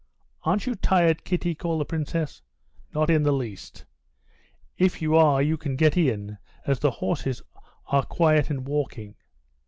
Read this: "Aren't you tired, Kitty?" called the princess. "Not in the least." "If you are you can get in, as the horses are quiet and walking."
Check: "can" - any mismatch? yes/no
no